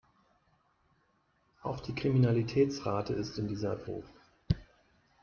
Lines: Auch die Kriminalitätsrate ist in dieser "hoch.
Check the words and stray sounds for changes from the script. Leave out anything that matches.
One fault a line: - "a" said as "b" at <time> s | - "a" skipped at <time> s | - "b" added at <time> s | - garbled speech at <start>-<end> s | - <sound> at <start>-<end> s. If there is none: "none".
none